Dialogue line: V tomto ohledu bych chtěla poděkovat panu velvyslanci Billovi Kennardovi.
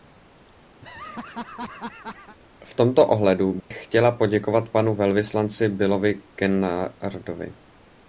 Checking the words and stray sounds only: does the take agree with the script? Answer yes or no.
no